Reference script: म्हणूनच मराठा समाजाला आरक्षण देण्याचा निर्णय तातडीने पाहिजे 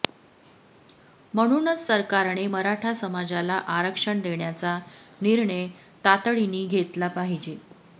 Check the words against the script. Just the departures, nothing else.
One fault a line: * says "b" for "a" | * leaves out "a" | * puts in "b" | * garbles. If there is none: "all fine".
* puts in "सरकारने"
* puts in "घेतला"